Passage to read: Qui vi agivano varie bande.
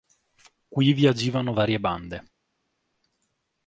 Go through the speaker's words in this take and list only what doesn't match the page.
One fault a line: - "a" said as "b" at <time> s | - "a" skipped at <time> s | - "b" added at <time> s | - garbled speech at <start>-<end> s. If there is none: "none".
none